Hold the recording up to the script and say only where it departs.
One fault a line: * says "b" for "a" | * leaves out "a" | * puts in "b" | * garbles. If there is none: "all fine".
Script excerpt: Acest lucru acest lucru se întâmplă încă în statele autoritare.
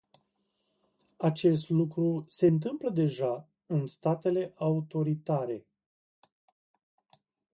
* leaves out "acest lucru"
* says "deja" for "încă"